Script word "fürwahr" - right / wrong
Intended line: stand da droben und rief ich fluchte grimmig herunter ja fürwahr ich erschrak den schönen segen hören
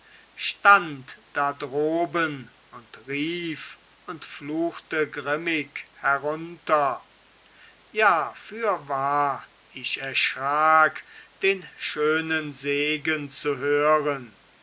right